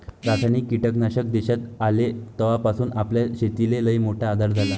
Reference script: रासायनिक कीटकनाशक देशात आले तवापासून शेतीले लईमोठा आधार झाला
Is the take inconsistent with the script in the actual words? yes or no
yes